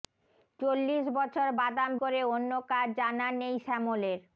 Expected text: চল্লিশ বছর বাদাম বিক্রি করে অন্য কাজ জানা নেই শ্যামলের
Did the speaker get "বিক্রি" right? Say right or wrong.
wrong